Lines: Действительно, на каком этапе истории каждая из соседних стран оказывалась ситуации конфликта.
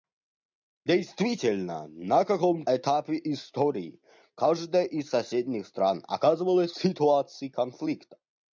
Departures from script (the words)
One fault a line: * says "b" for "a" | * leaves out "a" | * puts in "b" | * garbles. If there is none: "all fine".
all fine